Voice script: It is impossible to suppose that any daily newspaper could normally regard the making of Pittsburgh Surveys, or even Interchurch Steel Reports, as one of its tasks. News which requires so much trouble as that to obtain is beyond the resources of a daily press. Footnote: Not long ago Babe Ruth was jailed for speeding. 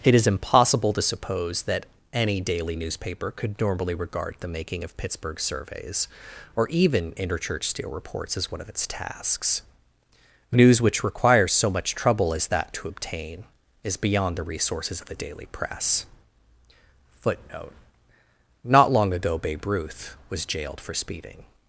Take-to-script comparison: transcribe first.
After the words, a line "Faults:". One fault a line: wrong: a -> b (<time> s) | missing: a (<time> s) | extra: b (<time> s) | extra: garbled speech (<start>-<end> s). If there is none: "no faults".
It is impossible to suppose that any daily newspaper could normally regard the making of Pittsburgh Surveys, or even Interchurch Steel Reports, as one of its tasks. News which requires so much trouble as that to obtain is beyond the resources of the daily press. Footnote: Not long ago Babe Ruth was jailed for speeding.
Faults:
wrong: a -> the (15.1 s)